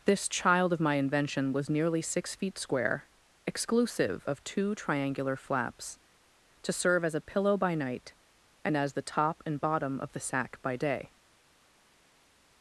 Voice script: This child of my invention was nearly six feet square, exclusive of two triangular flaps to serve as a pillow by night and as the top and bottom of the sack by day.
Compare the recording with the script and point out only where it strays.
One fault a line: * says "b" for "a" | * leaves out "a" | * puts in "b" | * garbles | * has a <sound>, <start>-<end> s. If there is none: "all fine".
all fine